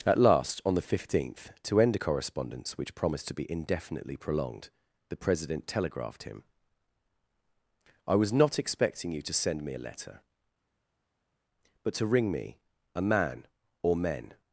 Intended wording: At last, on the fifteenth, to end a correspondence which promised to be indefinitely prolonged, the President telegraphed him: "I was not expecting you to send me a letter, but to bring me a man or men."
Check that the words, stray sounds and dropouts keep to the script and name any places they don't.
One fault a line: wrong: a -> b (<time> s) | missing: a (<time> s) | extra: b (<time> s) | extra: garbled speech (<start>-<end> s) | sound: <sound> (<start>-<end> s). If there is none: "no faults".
wrong: bring -> ring (12.1 s)